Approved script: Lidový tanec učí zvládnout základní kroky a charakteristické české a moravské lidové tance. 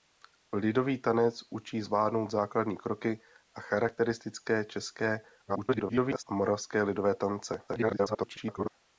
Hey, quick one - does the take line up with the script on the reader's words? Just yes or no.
no